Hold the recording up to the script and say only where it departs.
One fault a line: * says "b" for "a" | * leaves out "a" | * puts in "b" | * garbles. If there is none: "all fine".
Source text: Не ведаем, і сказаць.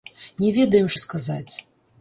all fine